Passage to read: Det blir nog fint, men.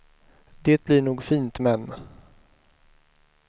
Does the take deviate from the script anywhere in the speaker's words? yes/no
no